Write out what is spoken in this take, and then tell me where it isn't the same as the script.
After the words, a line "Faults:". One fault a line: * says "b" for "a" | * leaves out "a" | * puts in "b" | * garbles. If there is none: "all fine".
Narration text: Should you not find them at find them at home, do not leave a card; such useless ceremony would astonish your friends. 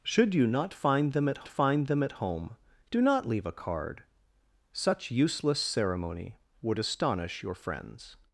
Should you not find them at find them at home, do not leave a card; such useless ceremony would astonish your friends.
Faults:
all fine